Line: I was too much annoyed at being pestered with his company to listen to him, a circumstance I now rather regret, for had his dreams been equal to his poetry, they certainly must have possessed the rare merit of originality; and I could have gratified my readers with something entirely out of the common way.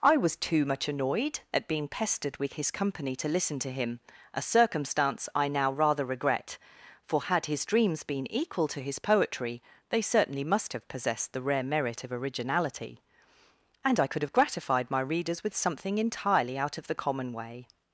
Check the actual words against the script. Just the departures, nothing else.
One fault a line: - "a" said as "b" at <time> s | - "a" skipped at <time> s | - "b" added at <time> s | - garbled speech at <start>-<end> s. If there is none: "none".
none